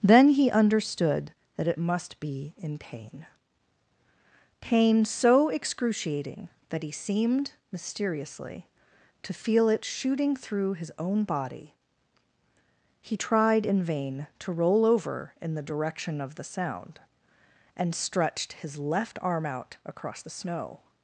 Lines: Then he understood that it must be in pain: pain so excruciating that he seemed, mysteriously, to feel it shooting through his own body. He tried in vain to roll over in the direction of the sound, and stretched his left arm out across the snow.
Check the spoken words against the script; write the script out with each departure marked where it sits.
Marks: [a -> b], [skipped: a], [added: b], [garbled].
Then he understood that it must be in pain: pain so excruciating that he seemed, mysteriously, to feel it shooting through his own body. He tried in vain to roll over in the direction of the sound, and stretched his left arm out across the snow.